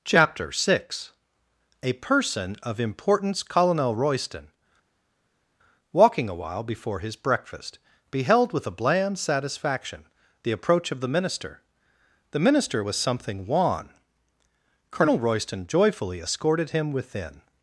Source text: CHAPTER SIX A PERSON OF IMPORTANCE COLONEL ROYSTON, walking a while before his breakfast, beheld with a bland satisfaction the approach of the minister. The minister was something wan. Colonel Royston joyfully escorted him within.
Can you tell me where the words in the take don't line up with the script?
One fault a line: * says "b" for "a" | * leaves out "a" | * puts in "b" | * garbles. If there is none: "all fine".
all fine